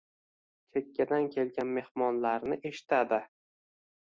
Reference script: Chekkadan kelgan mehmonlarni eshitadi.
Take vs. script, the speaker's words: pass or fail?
pass